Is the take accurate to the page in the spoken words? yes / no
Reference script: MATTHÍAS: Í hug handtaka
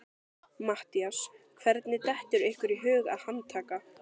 no